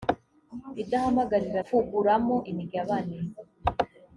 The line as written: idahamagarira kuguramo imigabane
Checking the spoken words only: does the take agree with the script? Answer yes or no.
yes